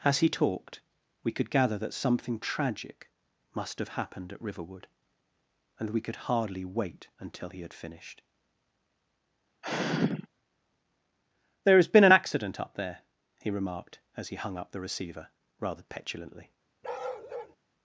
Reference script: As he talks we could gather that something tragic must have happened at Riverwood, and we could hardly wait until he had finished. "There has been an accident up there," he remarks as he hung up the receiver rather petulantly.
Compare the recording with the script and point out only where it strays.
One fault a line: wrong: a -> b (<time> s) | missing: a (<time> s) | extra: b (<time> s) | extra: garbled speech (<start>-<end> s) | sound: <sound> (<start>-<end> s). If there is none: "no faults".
wrong: talks -> talked (0.3 s)
sound: sigh (9.6-10.3 s)
wrong: remarks -> remarked (13.5 s)
sound: bark (16.8-17.6 s)